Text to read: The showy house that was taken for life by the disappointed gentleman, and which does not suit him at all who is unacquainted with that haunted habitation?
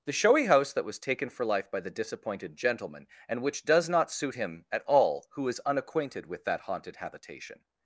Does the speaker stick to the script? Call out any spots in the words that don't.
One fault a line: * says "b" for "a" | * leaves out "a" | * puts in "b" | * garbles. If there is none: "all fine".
all fine